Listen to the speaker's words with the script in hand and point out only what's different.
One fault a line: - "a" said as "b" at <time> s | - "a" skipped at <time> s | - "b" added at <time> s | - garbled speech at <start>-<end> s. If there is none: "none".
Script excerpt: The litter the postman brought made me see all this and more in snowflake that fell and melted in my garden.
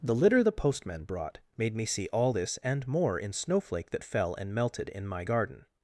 none